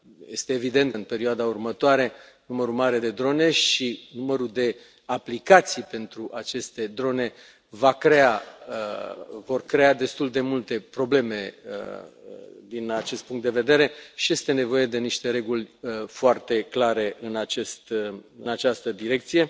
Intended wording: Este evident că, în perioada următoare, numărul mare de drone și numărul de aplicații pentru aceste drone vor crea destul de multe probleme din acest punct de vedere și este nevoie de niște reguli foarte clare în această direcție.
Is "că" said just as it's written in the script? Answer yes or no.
no